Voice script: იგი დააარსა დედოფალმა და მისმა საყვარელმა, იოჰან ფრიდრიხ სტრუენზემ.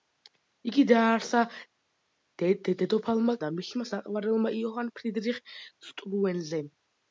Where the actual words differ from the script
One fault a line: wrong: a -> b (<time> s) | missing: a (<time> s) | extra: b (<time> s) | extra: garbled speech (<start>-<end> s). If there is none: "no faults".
no faults